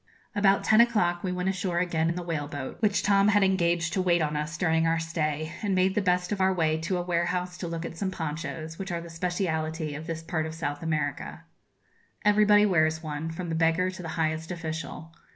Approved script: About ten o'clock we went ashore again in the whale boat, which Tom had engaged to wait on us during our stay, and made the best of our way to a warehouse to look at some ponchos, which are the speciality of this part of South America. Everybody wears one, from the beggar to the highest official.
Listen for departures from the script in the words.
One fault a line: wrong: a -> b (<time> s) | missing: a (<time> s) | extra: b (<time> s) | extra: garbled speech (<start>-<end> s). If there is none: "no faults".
no faults